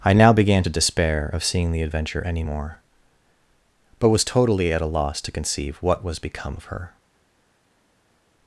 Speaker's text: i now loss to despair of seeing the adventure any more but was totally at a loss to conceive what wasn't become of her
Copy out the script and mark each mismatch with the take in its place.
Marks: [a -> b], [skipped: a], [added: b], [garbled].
i now [loss -> began] to despair of seeing the adventure any more but was totally at a loss to conceive what [wasn't -> was] become of her